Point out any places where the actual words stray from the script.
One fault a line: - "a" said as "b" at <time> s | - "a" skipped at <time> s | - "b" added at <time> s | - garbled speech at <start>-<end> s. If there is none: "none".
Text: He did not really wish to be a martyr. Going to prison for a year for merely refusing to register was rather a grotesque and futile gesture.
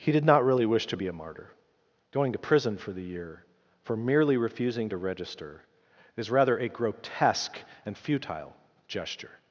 - "a" said as "the" at 2.9 s
- "was" said as "is" at 6.1 s